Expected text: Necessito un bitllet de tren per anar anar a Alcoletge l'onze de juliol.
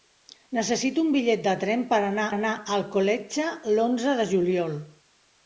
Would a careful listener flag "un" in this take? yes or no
no